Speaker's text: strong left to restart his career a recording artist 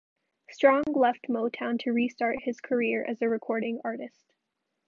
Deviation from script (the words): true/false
true